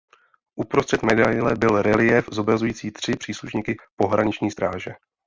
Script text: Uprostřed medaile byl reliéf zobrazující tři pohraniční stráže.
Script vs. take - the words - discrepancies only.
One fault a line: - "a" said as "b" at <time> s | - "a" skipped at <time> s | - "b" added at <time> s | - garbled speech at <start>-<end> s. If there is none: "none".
- "příslušníky" added at 3.2 s